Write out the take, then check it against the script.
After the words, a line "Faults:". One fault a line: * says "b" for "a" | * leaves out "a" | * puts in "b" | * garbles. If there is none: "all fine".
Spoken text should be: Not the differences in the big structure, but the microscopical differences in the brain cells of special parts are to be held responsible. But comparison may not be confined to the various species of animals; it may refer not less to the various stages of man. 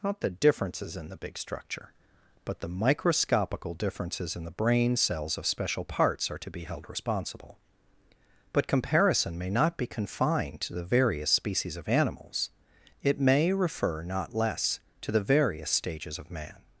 Not the differences in the big structure, but the microscopical differences in the brain cells of special parts are to be held responsible. But comparison may not be confined to the various species of animals; it may refer not less to the various stages of man.
Faults:
all fine